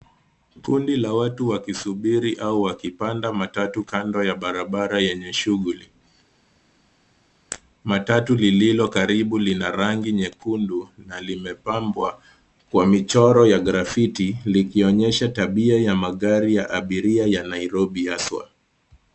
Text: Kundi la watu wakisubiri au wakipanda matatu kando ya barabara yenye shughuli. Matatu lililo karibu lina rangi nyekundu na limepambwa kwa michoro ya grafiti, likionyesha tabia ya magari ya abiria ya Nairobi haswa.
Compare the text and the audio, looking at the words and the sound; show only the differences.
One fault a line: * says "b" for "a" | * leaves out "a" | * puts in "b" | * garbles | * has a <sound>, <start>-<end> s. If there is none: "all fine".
all fine